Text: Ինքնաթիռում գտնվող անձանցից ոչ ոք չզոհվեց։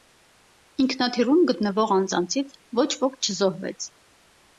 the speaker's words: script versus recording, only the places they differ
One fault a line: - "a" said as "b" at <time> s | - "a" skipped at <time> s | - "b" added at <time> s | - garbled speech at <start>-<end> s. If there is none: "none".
none